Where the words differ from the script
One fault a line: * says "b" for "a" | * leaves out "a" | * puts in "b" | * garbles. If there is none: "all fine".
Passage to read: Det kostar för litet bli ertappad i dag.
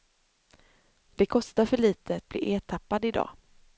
all fine